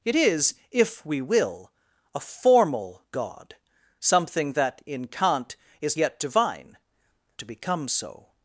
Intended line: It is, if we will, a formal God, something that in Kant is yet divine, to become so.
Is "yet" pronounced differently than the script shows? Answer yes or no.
no